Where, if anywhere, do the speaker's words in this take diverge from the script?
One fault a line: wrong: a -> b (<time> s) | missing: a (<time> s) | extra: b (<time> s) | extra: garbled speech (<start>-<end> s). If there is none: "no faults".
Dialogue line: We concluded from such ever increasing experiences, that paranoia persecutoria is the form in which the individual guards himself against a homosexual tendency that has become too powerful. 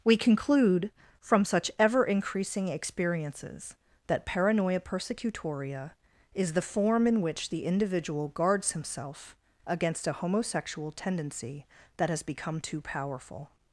wrong: concluded -> conclude (0.2 s)